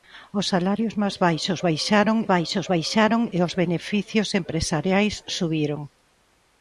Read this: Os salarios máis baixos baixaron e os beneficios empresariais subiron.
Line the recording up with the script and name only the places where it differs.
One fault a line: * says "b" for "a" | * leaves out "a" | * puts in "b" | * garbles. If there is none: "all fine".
* puts in "baixos baixaron"